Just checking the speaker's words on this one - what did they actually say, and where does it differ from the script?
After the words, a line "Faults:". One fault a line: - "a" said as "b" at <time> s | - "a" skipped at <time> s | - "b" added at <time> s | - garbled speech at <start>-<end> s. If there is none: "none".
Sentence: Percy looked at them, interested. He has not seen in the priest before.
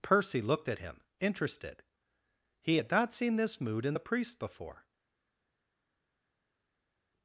Percy looked at him, interested. He had not seen this mood in the priest before.
Faults:
- "them" said as "him" at 0.8 s
- "has" said as "had" at 2.7 s
- "this mood" added at 3.4 s